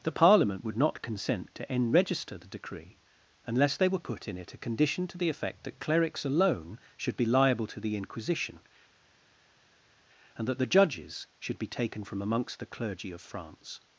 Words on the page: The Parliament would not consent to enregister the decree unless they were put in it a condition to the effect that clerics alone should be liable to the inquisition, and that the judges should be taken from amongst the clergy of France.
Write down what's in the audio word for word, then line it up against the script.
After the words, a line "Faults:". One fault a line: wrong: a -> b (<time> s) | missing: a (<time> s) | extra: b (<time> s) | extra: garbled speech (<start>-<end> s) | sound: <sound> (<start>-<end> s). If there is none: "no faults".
The Parliament would not consent to enregister the decree unless they were put in it a condition to the effect that clerics alone should be liable to the inquisition, and that the judges should be taken from amongst the clergy of France.
Faults:
no faults